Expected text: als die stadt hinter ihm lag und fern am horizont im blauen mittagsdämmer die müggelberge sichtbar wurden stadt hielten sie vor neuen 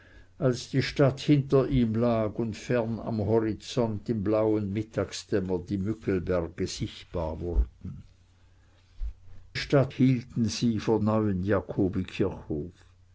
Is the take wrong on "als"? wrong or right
right